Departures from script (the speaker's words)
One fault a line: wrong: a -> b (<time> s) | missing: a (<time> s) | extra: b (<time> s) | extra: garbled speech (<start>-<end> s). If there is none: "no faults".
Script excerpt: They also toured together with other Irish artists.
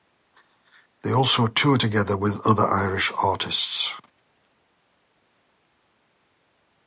no faults